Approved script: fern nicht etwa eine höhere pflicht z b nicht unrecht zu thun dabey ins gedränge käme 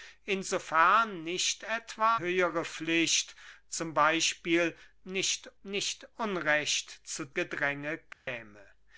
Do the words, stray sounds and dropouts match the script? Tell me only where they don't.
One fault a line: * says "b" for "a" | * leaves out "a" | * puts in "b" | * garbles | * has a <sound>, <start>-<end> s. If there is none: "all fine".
* leaves out "eine"
* puts in "nicht"
* leaves out "thun dabey ins"
* has a dropout, 8.1-8.3 s